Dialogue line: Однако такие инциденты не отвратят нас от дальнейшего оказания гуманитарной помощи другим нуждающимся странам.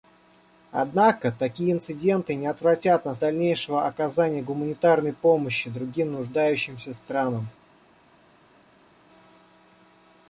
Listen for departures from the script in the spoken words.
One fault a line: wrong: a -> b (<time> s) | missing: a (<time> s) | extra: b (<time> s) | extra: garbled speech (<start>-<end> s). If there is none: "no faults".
missing: от (3.2 s)